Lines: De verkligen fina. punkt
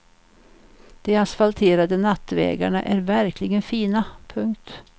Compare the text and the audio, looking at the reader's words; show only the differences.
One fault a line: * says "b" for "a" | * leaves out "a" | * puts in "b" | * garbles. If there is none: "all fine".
* puts in "asfalterade nattvägarna är"